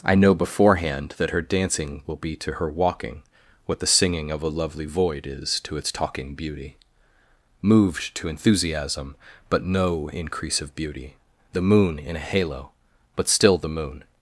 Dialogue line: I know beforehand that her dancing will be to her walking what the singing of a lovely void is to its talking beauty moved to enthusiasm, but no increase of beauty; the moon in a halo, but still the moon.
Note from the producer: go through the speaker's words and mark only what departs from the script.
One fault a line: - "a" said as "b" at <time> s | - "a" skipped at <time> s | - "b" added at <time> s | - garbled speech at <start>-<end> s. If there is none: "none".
none